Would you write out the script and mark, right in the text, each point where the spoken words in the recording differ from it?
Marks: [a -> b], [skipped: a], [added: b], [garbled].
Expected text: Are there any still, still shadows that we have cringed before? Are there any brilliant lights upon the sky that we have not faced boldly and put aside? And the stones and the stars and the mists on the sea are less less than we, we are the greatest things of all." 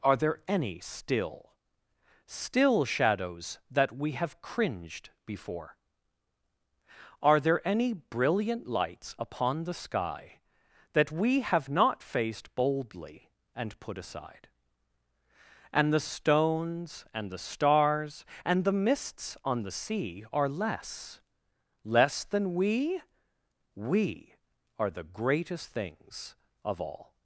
Are there any still, still shadows that we have cringed before? Are there any brilliant lights upon the sky that we have not faced boldly and put aside? And the stones and the stars and the mists on the sea are less less than we, we are the greatest things of all."